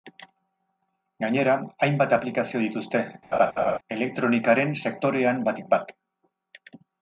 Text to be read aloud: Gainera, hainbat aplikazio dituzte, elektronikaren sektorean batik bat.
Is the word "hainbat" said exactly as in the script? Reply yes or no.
yes